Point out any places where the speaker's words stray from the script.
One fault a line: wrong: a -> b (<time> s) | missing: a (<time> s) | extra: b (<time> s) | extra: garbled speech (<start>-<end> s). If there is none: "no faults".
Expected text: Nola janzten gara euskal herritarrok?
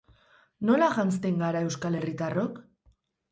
no faults